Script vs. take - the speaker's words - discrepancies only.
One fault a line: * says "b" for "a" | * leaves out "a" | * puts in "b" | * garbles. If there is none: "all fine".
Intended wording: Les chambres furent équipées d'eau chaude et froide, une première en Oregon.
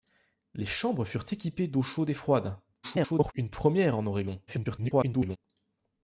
* garbles
* garbles